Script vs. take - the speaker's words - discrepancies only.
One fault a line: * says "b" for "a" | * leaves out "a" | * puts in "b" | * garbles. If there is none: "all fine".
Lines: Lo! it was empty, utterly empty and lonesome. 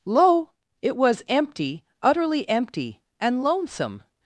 all fine